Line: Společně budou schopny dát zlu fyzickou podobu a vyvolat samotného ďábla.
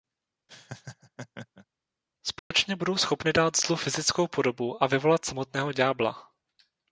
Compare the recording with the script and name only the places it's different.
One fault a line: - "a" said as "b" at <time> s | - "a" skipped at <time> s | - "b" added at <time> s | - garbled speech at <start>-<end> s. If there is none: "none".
none